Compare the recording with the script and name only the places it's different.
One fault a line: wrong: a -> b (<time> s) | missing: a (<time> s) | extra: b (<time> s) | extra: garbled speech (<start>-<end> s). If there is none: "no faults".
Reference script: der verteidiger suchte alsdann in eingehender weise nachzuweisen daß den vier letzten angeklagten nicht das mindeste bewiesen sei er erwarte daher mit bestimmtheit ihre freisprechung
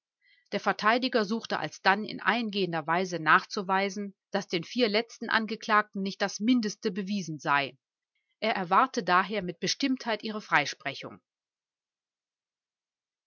no faults